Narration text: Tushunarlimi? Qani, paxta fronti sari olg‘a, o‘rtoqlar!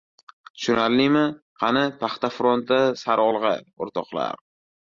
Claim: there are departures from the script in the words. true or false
false